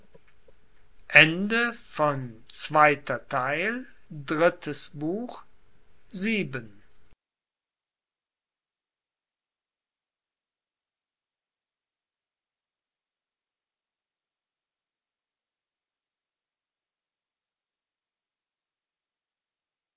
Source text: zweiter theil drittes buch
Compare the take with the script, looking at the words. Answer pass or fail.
pass